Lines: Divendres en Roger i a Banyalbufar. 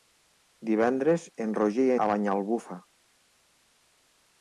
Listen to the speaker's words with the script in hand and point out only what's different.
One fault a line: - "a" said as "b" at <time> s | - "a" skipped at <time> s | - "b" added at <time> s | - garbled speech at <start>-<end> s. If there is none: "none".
none